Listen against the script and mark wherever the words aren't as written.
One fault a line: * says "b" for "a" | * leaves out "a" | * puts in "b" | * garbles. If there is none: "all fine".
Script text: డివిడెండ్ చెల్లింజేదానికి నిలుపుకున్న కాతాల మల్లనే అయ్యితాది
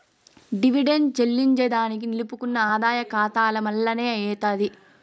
* puts in "ఆదాయ"